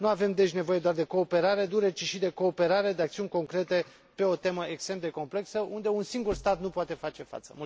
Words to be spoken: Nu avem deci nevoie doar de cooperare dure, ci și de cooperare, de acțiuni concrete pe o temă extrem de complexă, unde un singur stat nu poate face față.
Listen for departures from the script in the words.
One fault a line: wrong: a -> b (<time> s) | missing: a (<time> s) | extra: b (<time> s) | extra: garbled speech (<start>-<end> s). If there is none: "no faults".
no faults